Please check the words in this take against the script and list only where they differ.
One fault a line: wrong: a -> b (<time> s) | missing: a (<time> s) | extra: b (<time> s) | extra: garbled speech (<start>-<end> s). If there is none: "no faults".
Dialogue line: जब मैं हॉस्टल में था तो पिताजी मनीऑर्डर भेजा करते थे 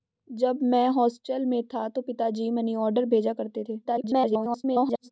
extra: garbled speech (3.8-5.1 s)